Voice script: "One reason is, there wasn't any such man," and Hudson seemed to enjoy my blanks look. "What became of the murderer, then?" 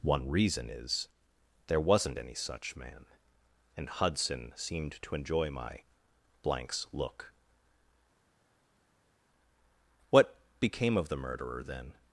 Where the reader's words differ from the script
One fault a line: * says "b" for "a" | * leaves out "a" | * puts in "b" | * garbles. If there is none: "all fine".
all fine